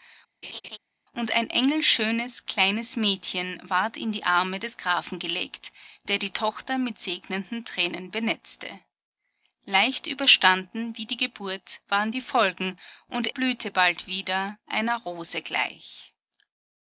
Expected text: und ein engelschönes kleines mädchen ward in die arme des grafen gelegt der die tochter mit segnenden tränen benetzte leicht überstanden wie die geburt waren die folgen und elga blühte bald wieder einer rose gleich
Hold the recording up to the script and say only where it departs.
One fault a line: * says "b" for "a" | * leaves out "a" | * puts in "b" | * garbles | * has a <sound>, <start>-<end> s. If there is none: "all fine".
* has a laugh, 0.4-0.8 s
* leaves out "elga"